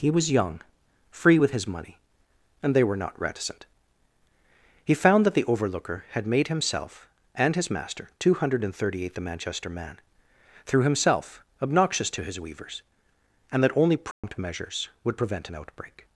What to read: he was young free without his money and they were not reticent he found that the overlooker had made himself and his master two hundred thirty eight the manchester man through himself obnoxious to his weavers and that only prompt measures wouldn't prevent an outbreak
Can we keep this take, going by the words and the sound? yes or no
no